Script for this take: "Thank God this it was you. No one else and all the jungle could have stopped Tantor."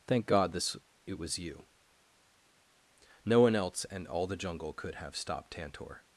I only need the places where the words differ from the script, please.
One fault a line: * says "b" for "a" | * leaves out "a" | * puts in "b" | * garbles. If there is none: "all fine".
all fine